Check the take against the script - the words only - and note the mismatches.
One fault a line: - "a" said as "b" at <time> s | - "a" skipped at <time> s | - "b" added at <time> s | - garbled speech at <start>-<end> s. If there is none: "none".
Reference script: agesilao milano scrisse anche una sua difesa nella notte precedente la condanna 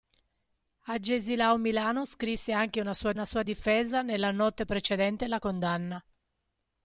- "una sua" added at 3.1 s